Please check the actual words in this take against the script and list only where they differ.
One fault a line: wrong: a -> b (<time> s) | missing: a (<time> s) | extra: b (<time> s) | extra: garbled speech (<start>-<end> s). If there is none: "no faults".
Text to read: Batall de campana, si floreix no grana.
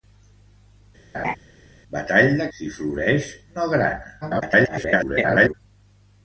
missing: campana (2.5 s)
extra: garbled speech (4.2-5.5 s)